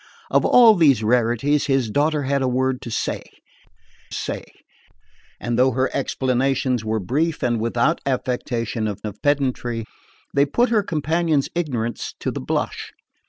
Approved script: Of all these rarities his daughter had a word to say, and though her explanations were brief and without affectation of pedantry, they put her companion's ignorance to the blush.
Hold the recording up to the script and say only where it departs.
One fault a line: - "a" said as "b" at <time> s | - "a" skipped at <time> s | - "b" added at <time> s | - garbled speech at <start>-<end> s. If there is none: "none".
- "say" added at 4.1 s
- "of" added at 9.0 s